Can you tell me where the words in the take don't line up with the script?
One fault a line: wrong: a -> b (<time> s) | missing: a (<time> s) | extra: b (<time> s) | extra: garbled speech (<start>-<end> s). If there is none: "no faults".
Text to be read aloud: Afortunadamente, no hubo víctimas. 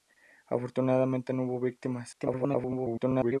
extra: garbled speech (2.1-3.4 s)